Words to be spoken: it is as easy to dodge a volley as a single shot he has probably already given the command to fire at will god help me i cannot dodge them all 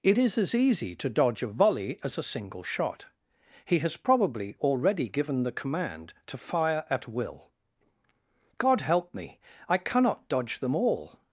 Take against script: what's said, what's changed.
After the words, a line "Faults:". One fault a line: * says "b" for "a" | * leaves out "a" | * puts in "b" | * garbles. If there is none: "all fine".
it is as easy to dodge a volley as a single shot he has probably already given the command to fire at will god help me i cannot dodge them all
Faults:
all fine